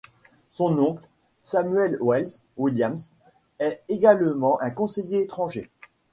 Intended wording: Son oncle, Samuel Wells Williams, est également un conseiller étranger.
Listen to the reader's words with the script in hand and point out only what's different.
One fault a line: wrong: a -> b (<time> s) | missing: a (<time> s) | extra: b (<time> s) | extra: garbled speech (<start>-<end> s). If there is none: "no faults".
no faults